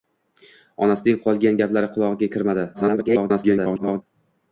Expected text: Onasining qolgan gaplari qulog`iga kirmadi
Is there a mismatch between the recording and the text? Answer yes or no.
yes